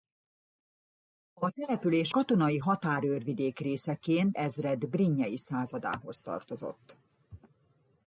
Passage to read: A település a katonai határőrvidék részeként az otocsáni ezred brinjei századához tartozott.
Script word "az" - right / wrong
wrong